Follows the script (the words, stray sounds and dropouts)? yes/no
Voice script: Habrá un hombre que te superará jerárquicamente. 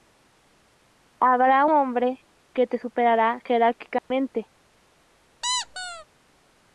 no